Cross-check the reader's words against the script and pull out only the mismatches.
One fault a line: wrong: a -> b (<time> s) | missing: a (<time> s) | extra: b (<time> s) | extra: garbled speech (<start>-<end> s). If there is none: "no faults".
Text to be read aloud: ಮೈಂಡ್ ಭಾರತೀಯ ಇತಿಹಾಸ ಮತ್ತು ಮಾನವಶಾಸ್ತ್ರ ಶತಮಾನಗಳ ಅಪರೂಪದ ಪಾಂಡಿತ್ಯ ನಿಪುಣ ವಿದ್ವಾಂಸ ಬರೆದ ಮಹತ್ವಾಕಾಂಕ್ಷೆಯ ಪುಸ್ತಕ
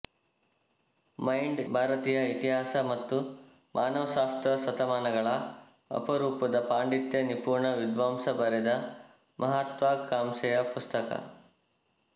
no faults